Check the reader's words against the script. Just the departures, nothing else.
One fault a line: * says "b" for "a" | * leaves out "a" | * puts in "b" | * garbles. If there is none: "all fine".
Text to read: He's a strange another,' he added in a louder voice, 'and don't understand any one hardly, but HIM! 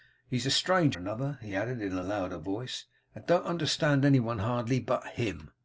all fine